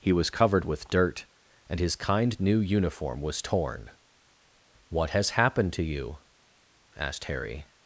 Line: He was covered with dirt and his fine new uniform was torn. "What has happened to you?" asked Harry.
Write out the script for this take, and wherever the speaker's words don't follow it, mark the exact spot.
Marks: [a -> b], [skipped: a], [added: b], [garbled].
He was covered with dirt and his [fine -> kind] new uniform was torn. "What has happened to you?" asked Harry.